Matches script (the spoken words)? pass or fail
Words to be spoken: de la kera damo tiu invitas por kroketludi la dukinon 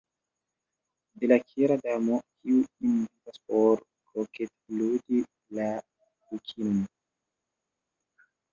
fail